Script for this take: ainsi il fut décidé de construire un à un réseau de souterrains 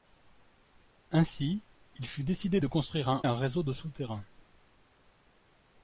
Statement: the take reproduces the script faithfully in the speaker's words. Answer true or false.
true